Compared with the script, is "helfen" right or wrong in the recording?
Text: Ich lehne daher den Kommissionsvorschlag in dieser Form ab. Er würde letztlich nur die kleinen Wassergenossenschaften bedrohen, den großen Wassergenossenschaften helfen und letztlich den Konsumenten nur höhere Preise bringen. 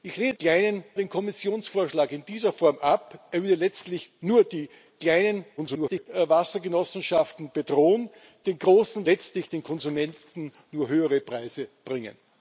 wrong